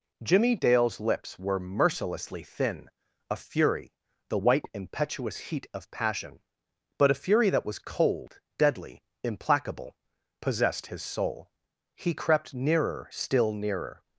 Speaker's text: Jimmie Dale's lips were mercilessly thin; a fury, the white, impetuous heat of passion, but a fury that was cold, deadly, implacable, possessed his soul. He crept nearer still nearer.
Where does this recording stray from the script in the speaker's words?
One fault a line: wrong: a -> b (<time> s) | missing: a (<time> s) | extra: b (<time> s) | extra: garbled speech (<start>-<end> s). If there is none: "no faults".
no faults